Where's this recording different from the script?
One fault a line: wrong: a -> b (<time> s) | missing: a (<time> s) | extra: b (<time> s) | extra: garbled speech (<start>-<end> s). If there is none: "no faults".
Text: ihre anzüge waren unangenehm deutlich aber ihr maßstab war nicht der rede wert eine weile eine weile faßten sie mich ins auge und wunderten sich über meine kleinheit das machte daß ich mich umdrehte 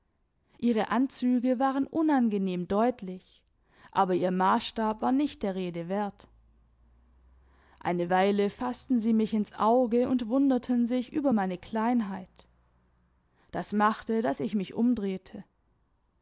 missing: eine weile (8.5 s)